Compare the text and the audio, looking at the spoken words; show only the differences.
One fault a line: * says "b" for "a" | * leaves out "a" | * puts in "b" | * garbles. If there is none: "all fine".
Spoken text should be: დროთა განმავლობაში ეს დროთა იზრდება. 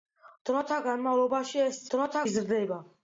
all fine